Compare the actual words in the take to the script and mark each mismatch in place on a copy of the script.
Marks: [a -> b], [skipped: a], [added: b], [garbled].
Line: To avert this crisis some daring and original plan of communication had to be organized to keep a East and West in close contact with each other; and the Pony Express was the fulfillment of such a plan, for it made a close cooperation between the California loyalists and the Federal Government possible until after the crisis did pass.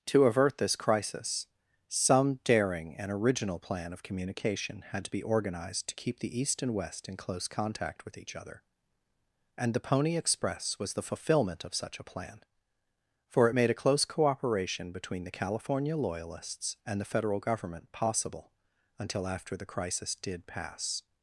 To avert this crisis some daring and original plan of communication had to be organized to keep [a -> the] East and West in close contact with each other; and the Pony Express was the fulfillment of such a plan, for it made a close cooperation between the California loyalists and the Federal Government possible until after the crisis did pass.